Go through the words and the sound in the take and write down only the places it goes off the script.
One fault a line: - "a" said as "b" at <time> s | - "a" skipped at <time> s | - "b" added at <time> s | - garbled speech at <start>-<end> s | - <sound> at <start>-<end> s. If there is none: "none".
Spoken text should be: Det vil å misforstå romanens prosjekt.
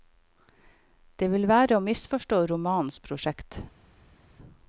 - "være" added at 1.5 s